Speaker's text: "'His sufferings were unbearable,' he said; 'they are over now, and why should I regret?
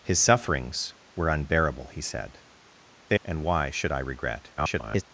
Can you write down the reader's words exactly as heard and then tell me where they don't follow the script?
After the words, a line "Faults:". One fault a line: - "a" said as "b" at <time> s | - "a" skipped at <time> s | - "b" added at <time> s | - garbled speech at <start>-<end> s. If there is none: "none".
"'His sufferings were unbearable,' he said; 'they and why should I regret? [garbled]
Faults:
- "are over now" skipped at 3.2 s
- garbled speech at 4.6-5.0 s